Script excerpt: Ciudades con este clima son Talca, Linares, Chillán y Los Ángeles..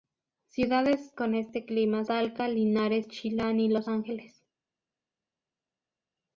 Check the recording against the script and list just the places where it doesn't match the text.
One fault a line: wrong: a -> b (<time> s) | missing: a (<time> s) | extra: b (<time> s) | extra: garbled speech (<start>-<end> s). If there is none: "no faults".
missing: son (2.0 s)